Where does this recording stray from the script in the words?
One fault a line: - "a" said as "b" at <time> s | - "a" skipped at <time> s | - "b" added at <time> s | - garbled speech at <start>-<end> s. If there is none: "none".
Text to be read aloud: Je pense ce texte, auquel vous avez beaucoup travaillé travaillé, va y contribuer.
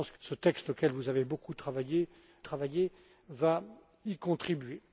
none